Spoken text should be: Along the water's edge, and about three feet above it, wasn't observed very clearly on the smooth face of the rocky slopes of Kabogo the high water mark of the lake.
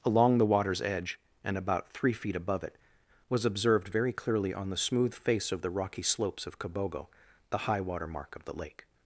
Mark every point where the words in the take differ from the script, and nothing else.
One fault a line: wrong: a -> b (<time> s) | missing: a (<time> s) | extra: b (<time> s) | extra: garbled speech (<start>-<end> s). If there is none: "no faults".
wrong: wasn't -> was (3.3 s)